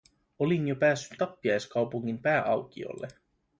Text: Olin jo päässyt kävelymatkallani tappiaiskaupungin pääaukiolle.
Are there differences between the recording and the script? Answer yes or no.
yes